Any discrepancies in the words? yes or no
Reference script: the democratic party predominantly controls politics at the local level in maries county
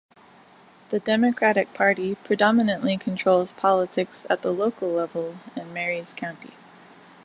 no